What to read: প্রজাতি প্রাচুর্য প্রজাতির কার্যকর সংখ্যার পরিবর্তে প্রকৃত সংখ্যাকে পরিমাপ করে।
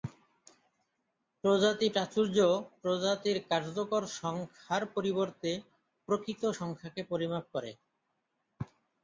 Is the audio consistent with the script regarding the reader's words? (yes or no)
yes